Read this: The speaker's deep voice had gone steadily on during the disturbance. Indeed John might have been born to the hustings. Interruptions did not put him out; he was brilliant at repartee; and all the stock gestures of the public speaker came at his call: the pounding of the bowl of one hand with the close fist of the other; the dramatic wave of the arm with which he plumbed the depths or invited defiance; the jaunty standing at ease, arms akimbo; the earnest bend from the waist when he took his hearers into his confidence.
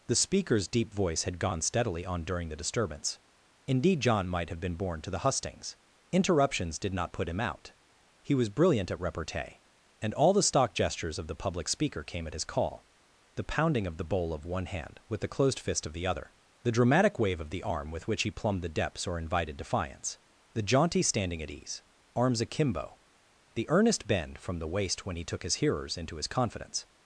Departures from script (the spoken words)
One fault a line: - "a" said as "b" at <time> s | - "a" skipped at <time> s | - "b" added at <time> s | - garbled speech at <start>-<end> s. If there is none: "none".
- "close" said as "closed" at 15.3 s